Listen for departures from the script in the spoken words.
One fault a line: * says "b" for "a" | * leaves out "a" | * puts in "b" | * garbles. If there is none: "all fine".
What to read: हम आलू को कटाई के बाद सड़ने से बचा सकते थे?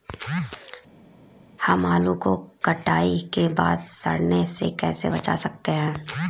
* puts in "कैसे"
* says "हैं" for "थे"